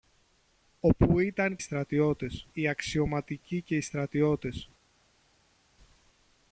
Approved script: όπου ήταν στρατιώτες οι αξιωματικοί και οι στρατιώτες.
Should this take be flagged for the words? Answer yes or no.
no